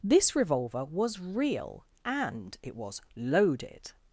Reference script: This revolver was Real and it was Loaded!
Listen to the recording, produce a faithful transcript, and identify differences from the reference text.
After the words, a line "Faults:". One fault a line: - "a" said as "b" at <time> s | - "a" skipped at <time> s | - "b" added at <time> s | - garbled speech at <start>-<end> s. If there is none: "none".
This revolver was Real and it was Loaded!
Faults:
none